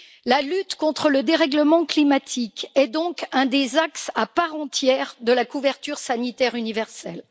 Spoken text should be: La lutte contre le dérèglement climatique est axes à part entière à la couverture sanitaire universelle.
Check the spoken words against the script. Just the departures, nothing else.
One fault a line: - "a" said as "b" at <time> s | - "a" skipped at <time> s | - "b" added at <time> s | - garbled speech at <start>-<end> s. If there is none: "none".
- "donc un des" added at 2.9 s
- "à" said as "de" at 5.2 s